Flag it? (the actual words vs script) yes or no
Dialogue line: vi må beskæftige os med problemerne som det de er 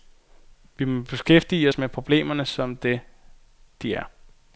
no